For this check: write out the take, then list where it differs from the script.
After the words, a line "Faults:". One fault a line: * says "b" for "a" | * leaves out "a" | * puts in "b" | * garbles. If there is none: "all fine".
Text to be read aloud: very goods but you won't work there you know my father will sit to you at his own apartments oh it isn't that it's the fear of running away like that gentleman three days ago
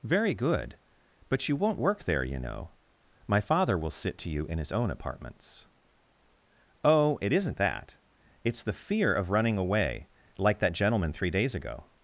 very good but you won't work there you know my father will sit to you in his own apartments oh it isn't that it's the fear of running away like that gentleman three days ago
Faults:
* says "good" for "goods"
* says "in" for "at"